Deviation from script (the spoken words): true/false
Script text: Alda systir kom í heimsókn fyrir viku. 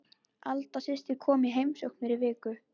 false